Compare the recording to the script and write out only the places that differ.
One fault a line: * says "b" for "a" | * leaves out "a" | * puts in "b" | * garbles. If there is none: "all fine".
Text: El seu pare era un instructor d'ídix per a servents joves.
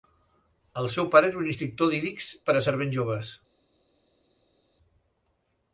all fine